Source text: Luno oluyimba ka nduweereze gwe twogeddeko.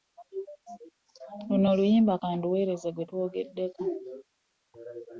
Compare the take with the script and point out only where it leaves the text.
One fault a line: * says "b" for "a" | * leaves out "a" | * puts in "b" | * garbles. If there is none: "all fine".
all fine